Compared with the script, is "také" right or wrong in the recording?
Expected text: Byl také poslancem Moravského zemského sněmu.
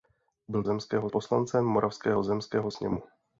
wrong